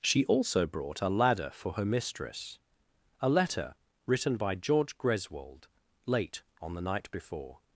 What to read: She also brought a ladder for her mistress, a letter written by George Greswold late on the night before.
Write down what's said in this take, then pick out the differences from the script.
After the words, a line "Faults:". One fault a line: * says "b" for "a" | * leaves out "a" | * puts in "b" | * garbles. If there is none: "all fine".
She also brought a ladder for her mistress, a letter written by George Greswold late on the night before.
Faults:
all fine